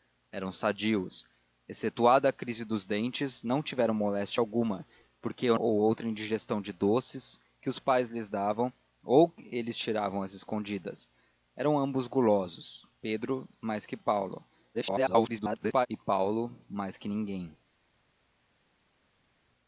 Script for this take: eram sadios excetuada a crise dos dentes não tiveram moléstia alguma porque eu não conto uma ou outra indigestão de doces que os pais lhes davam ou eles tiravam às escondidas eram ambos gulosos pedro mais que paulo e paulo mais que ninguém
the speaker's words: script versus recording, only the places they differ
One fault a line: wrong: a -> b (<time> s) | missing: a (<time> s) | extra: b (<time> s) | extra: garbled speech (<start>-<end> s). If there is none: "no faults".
missing: não conto uma (5.6 s)
extra: garbled speech (14.7-15.9 s)